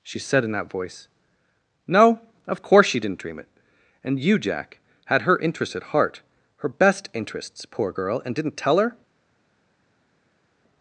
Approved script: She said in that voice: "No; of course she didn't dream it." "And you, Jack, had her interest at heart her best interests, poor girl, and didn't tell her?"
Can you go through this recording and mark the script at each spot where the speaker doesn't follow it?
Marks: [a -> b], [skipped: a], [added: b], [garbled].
She said in that voice: "No; of course she didn't dream it." "And you, Jack, had her interest at heart her best interests, poor girl, and didn't tell her?"